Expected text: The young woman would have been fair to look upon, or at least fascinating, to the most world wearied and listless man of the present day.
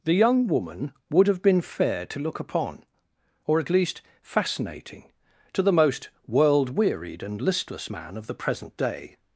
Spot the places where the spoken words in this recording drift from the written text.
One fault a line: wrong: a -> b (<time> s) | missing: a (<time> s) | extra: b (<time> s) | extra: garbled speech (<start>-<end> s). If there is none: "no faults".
no faults